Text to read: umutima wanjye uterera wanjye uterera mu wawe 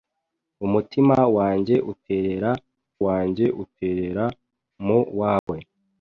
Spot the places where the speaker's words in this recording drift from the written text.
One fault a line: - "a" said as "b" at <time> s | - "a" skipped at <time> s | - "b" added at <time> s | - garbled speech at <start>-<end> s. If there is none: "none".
none